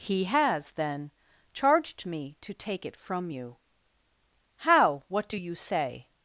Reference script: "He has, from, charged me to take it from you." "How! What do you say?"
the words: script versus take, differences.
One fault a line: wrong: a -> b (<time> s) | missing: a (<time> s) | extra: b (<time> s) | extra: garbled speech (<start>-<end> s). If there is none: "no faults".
wrong: from -> then (0.7 s)